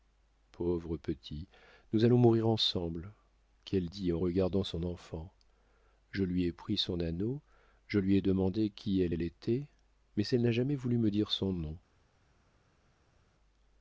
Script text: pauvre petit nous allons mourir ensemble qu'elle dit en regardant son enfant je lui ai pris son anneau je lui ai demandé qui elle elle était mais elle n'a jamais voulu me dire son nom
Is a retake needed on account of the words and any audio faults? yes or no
no